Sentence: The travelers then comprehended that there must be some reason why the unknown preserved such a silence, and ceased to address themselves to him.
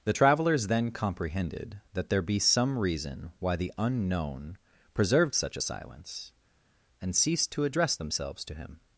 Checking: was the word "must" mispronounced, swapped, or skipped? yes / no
yes